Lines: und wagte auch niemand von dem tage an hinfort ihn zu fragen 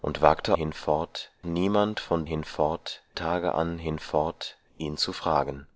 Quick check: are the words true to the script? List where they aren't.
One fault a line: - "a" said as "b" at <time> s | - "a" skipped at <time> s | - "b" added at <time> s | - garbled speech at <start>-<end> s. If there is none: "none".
- "auch" said as "hinfort" at 0.5 s
- "dem" said as "hinfort" at 2.2 s